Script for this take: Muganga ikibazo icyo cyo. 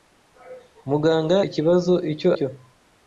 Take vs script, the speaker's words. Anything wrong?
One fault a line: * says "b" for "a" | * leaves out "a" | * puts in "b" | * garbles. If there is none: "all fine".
all fine